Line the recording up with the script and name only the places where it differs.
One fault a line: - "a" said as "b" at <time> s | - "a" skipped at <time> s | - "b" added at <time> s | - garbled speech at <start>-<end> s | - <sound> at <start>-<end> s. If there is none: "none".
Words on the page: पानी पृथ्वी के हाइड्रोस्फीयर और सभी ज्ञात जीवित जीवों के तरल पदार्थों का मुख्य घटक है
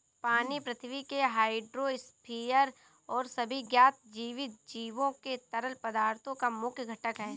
none